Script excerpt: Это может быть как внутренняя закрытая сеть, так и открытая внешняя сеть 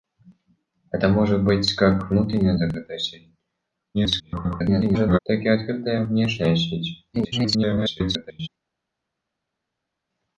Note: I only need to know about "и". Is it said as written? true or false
true